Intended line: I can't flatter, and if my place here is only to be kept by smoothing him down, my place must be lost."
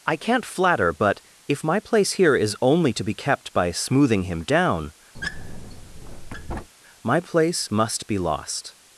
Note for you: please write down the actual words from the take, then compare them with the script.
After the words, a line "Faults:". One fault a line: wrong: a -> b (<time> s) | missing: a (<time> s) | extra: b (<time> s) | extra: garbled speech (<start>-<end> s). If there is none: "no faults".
I can't flatter, but if my place here is only to be kept by smoothing him down, my place must be lost."
Faults:
wrong: and -> but (0.9 s)